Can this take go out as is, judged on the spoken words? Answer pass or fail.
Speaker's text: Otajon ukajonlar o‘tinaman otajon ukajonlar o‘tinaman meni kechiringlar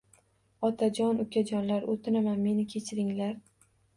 fail